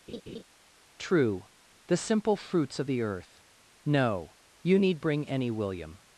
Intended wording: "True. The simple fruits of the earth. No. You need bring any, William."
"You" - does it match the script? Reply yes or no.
yes